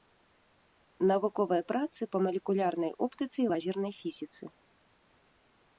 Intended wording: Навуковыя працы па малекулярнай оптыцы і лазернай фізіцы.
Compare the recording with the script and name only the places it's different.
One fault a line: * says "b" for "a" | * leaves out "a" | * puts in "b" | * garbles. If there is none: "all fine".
all fine